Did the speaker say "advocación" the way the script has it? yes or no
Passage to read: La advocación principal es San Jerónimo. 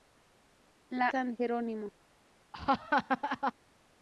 no